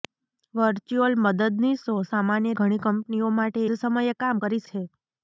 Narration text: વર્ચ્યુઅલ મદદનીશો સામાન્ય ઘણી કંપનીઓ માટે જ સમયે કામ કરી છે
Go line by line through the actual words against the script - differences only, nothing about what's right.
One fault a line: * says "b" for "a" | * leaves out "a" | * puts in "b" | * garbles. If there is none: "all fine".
all fine